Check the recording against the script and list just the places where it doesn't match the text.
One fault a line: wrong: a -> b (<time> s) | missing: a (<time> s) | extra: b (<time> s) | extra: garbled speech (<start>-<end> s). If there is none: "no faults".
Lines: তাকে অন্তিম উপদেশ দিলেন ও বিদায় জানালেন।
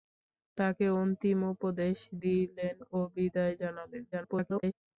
extra: garbled speech (4.1-4.7 s)